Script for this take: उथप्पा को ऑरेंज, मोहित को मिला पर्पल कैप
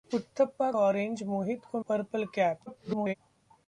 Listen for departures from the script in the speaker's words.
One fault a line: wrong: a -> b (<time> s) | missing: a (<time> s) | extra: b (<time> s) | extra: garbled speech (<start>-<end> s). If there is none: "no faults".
missing: को (0.7 s)
missing: मिला (1.8 s)
extra: garbled speech (2.7-3.1 s)